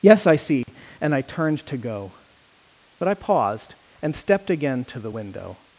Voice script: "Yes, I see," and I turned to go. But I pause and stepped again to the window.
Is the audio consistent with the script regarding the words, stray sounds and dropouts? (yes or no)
no